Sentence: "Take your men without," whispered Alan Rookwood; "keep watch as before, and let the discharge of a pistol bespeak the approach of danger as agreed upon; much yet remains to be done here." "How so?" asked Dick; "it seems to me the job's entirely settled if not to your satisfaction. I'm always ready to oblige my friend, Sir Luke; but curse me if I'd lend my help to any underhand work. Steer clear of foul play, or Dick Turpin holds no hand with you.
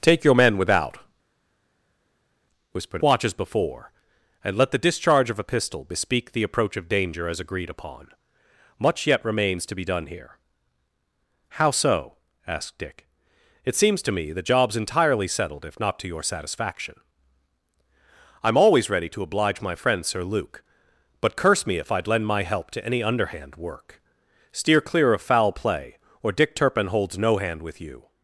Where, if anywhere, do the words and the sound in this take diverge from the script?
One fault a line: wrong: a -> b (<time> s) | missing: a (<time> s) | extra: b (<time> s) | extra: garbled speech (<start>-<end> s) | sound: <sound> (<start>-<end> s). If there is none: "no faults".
missing: Alan Rookwood keep (3.0 s)